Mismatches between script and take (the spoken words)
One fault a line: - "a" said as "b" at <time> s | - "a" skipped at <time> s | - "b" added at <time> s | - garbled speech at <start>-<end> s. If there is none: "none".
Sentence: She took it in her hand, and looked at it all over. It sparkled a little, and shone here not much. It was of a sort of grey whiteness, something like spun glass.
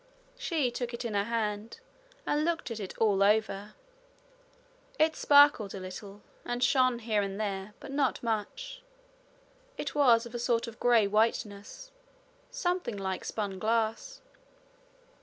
- "and there but" added at 7.2 s